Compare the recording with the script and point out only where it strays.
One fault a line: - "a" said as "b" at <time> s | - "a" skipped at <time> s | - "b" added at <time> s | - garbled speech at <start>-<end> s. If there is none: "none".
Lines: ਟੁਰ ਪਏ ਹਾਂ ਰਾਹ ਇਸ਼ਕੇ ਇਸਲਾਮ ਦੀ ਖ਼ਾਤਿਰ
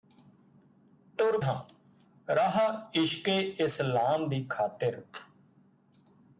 - "ਪਏ" skipped at 1.4 s